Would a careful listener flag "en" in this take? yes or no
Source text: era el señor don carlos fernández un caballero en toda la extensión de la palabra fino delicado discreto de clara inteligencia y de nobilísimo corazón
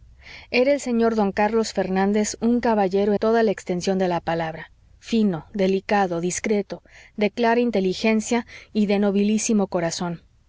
yes